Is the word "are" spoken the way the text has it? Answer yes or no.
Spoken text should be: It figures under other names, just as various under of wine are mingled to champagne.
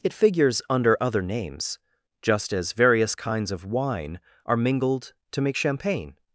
yes